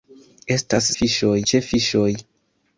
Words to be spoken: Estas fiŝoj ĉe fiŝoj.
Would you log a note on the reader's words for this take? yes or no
no